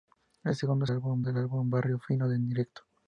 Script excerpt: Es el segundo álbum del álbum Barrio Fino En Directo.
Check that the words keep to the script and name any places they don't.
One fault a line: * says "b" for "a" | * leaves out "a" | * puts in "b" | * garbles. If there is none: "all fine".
all fine